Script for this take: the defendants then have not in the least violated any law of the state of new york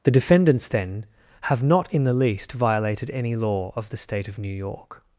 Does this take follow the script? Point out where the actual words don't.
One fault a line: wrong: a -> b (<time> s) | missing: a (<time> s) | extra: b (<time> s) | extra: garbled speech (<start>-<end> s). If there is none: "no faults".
no faults